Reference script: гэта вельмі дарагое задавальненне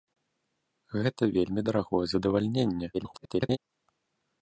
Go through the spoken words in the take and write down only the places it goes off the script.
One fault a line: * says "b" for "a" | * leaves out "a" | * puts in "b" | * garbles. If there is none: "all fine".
* garbles